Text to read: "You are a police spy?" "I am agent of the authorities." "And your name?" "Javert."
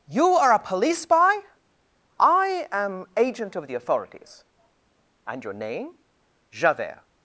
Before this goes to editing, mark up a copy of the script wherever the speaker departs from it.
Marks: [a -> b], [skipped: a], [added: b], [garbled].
"You are a police spy?" "I am agent of the authorities." "And your name?" "Javert."